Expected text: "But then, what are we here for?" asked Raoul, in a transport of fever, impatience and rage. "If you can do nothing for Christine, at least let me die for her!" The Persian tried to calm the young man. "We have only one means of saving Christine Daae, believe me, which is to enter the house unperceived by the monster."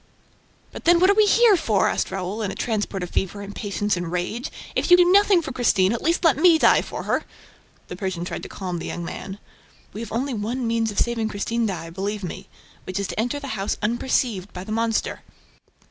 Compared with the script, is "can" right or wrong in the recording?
wrong